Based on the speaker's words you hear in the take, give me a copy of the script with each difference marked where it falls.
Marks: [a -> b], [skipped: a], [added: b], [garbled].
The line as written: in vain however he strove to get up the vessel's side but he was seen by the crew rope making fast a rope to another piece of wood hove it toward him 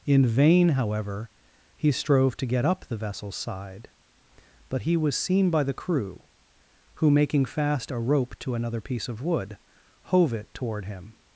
in vain however he strove to get up the vessel's side but he was seen by the crew [rope -> who] making fast a rope to another piece of wood hove it toward him